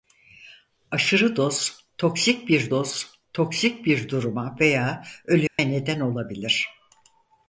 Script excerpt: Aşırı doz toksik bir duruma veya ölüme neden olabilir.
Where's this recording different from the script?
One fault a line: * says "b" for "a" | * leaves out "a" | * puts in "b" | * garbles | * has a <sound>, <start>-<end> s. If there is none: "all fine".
* puts in "doz toksik bir"
* has a dropout, 5.5-5.6 s